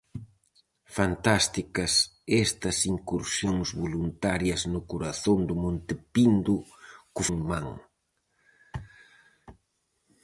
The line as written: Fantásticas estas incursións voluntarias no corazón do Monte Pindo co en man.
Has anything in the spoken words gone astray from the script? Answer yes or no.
no